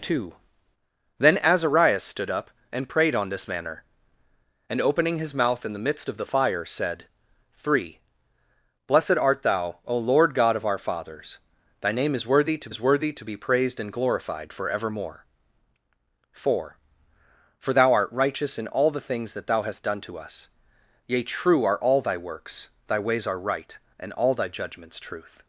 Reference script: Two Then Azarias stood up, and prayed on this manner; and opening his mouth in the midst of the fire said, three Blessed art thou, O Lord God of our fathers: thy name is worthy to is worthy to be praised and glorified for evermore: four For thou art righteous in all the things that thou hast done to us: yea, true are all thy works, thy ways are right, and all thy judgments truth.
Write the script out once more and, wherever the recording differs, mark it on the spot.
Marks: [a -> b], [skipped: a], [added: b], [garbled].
Two Then Azarias stood up, and prayed on this manner; and opening his mouth in the midst of the fire said, three Blessed art thou, O Lord God of our fathers: thy name is worthy to is worthy to be praised and glorified for evermore: four For thou art righteous in all the things that thou hast done to us: yea, true are all thy works, thy ways are right, and all thy judgments truth.